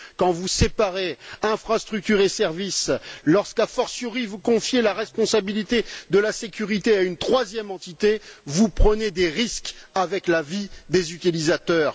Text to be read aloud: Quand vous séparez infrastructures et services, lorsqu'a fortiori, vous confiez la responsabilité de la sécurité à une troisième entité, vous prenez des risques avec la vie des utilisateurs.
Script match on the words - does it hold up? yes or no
yes